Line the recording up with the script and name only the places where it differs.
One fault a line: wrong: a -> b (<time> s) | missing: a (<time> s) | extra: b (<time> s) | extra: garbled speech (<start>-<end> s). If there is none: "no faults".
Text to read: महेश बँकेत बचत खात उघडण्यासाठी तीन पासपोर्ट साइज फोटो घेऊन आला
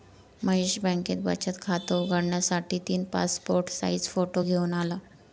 no faults